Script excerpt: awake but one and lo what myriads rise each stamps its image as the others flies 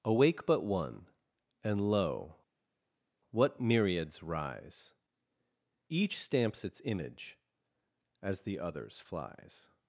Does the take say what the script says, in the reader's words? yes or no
yes